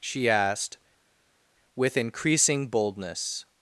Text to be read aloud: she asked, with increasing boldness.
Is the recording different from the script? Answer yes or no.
no